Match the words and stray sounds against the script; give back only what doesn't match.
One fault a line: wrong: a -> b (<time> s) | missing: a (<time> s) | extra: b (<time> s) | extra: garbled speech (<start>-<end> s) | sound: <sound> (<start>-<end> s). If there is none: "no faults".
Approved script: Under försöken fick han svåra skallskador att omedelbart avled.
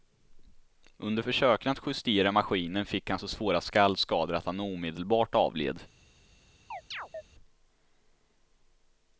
extra: att justera maskinen (1.7 s)
extra: så (3.2 s)
extra: han (4.4 s)
sound: chirp (6.7-7.2 s)